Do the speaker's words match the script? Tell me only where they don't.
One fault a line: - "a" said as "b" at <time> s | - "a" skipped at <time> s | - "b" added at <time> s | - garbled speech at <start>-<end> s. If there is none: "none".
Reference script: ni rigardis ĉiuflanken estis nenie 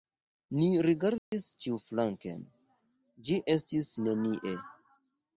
- "ĝi" added at 3.3 s